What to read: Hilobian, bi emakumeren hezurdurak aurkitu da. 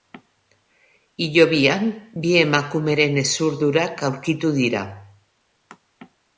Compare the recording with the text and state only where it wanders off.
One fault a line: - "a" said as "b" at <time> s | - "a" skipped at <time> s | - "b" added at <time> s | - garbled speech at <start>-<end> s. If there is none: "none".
- "da" said as "dira" at 4.6 s